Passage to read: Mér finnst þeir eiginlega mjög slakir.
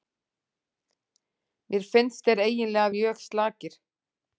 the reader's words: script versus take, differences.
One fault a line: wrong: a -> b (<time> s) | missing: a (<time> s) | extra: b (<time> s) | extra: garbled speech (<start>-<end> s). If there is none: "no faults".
no faults